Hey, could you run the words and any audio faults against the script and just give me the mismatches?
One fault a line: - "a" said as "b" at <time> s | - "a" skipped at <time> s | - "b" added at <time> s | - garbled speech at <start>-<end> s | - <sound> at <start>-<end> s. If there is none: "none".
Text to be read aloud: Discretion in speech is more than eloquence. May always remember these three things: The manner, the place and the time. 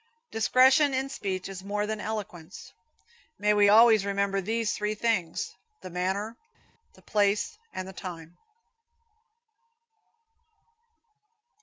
- "we" added at 3.5 s